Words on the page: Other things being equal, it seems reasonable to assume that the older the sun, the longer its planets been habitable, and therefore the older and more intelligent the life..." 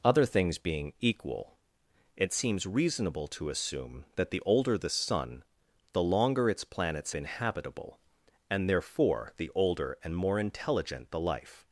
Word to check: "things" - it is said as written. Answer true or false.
true